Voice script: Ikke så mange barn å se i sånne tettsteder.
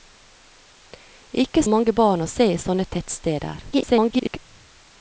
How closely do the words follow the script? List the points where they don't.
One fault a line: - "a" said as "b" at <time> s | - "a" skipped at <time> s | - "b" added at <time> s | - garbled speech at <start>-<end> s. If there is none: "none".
- "så" skipped at 1.6 s
- garbled speech at 3.7-4.4 s